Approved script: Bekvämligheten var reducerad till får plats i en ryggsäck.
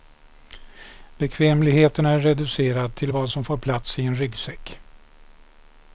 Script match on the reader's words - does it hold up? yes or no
no